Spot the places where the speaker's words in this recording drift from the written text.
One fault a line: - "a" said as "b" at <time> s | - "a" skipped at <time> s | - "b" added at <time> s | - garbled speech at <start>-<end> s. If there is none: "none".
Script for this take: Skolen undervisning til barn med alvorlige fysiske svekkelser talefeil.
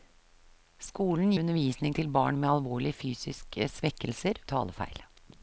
none